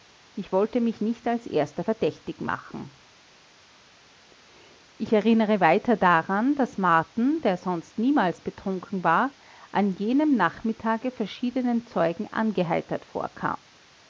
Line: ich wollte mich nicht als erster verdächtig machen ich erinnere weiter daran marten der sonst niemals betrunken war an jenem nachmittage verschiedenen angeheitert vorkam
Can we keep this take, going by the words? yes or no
no